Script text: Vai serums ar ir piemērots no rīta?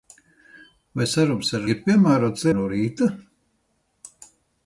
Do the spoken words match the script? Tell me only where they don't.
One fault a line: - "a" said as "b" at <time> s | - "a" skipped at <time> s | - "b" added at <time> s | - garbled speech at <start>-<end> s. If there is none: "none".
none